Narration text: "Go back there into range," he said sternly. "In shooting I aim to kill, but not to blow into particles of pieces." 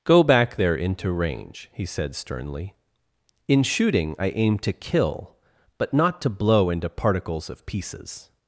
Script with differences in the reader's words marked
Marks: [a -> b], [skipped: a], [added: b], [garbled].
"Go back there into range," he said sternly. "In shooting I aim to kill, but not to blow into particles of pieces."